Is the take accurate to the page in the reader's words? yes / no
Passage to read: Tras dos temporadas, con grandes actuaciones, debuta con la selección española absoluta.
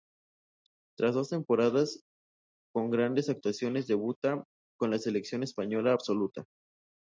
yes